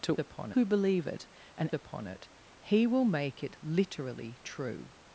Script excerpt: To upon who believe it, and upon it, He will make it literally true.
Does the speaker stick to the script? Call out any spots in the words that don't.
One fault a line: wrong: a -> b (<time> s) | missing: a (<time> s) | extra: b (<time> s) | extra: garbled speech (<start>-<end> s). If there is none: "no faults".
no faults